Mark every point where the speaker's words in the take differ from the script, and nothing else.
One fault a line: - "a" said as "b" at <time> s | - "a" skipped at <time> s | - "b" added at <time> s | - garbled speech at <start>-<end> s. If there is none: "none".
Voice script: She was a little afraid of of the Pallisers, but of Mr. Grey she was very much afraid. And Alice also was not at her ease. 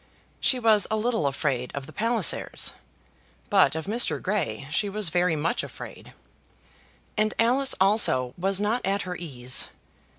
- "of" skipped at 1.9 s